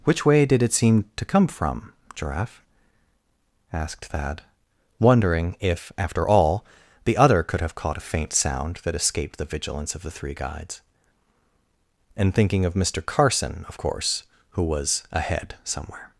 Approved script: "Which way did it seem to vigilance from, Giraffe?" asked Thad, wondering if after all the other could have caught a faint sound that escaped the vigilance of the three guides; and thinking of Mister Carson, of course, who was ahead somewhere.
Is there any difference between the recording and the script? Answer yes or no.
yes